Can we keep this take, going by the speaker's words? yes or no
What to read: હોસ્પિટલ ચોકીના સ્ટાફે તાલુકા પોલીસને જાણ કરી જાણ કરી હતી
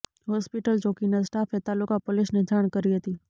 no